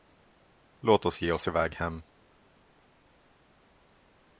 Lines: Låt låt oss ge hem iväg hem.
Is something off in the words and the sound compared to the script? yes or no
yes